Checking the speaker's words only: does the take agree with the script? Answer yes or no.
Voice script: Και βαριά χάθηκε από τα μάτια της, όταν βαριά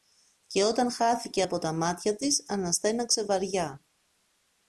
no